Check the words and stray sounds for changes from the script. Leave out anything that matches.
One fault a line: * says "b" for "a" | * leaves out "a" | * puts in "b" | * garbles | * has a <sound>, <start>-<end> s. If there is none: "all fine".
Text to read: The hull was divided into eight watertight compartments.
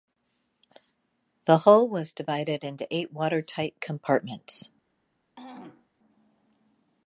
* has a throat clearing, 5.4-5.9 s